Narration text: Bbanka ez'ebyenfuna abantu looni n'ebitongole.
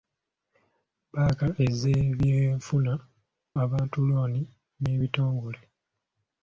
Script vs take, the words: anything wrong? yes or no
no